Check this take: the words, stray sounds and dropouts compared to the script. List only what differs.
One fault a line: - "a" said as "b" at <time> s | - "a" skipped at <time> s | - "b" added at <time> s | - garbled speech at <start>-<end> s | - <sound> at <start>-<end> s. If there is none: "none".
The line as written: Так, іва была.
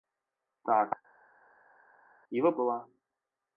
none